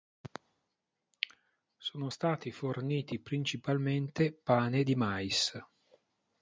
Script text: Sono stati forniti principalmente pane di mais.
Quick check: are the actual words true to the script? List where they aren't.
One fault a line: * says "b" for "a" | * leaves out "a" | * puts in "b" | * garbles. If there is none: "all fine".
all fine